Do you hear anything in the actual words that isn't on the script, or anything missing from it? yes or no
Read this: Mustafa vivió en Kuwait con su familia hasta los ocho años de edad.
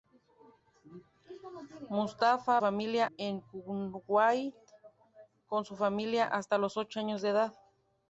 yes